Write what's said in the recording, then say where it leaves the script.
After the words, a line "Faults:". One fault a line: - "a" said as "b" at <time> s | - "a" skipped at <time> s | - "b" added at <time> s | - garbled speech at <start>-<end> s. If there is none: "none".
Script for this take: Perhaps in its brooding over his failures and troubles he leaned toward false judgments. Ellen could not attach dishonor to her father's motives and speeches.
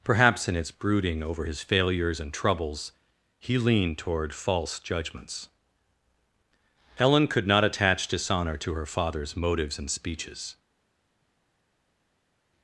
Perhaps in its brooding over his failures and troubles he leaned toward false judgments. Ellen could not attach dishonor to her father's motives and speeches.
Faults:
none